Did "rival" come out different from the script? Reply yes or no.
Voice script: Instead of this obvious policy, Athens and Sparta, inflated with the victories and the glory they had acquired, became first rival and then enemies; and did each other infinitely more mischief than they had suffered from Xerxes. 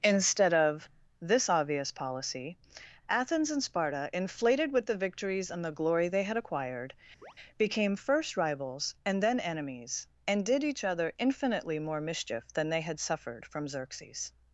yes